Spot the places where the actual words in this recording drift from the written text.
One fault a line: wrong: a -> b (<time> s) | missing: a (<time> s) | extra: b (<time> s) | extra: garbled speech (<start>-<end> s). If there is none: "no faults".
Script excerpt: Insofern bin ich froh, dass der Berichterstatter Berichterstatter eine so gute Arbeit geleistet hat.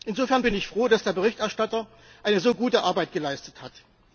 missing: Berichterstatter (1.9 s)